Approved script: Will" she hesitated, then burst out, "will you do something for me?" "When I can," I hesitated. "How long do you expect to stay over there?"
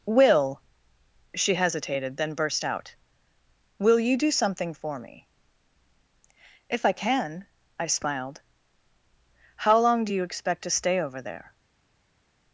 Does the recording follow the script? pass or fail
fail